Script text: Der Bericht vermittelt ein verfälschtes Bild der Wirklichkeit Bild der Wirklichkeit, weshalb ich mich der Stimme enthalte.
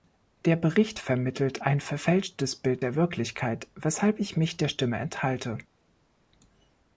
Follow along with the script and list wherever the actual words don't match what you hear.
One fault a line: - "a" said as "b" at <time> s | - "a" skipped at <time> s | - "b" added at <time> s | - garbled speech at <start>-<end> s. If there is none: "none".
- "Bild der Wirklichkeit" skipped at 3.7 s